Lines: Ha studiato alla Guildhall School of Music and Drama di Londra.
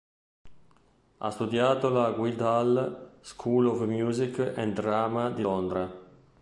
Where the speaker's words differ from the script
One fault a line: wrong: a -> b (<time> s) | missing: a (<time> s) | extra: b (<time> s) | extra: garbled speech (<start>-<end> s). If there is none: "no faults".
no faults